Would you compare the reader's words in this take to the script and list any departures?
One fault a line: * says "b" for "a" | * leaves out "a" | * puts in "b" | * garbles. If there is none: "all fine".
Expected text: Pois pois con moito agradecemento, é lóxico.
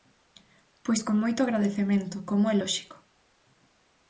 * leaves out "pois"
* puts in "como"